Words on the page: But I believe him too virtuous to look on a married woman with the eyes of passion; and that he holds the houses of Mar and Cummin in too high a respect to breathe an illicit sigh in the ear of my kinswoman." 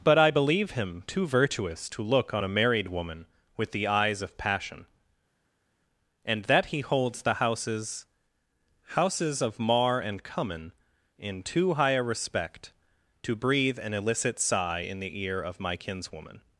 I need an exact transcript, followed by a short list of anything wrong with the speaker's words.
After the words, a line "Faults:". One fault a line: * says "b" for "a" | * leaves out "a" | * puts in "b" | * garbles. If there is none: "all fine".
But I believe him too virtuous to look on a married woman with the eyes of passion; and that he holds the houses houses of Mar and Cummin in too high a respect to breathe an illicit sigh in the ear of my kinswoman."
Faults:
* puts in "houses"